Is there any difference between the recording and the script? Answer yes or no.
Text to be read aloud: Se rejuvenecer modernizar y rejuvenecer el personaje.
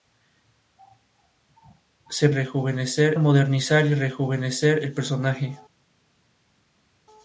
no